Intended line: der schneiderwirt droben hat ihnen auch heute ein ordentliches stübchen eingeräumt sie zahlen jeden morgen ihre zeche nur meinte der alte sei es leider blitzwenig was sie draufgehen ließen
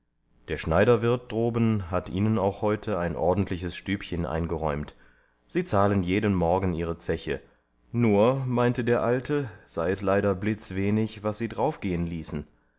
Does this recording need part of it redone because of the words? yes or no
no